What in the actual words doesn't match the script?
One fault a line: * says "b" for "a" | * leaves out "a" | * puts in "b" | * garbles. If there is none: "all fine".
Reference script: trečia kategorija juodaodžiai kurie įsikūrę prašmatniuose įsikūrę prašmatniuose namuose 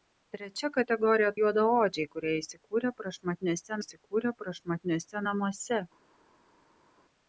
all fine